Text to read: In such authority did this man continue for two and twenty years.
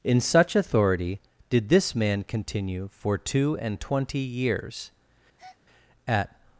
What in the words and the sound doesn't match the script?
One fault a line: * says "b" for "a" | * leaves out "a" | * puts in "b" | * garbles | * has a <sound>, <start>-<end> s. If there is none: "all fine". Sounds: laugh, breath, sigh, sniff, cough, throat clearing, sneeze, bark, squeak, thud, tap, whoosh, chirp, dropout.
* has a breath, 5.4-5.6 s
* puts in "At"